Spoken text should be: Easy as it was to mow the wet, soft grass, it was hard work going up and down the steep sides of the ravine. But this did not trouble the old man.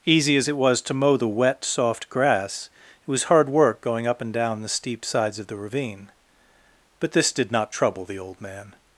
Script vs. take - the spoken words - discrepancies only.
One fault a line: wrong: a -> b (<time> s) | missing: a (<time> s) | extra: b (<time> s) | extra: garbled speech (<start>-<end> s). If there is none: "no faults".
no faults